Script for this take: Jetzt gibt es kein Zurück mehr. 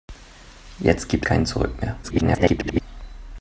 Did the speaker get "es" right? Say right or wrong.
wrong